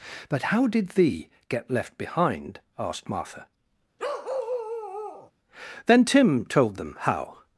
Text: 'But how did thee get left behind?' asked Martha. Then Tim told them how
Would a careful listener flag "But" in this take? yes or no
no